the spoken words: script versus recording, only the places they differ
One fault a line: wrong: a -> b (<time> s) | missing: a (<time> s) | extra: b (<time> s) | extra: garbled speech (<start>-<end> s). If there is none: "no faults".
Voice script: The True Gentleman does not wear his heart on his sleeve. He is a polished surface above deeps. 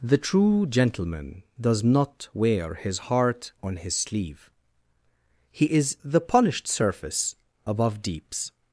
wrong: a -> the (6.0 s)